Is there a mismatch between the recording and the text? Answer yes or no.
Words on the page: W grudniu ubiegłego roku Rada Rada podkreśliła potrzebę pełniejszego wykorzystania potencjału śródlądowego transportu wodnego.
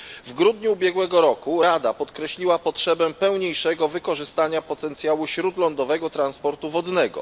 yes